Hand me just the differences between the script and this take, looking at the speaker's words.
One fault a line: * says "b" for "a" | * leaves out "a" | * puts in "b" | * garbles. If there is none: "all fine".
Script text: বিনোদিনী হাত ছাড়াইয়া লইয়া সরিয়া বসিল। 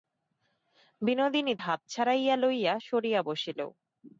all fine